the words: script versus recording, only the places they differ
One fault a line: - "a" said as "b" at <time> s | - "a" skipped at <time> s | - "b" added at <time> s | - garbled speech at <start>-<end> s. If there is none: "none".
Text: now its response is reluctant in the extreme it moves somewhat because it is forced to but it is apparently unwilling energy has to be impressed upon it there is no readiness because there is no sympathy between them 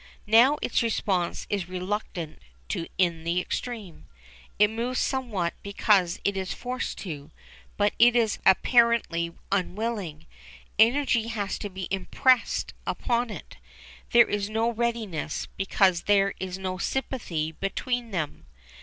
none